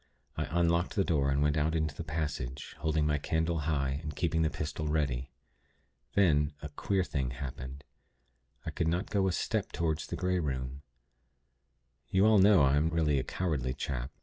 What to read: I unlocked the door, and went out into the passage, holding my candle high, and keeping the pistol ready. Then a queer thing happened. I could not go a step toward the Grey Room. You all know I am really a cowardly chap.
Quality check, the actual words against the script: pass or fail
pass